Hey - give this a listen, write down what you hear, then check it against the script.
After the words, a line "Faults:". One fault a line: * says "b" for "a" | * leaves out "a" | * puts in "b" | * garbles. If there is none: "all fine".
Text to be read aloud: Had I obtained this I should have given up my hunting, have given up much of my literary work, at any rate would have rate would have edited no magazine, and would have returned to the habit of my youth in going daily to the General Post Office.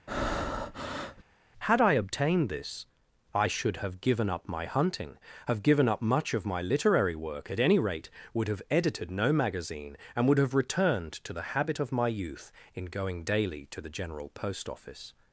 Had I obtained this I should have given up my hunting, have given up much of my literary work, at any rate would have edited no magazine, and would have returned to the habit of my youth in going daily to the General Post Office.
Faults:
* leaves out "rate would have"